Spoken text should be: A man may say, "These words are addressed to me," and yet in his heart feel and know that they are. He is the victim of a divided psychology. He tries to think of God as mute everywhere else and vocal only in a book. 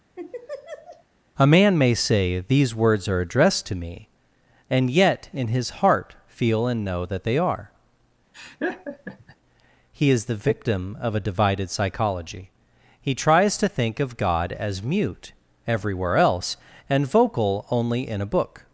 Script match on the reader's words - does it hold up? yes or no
yes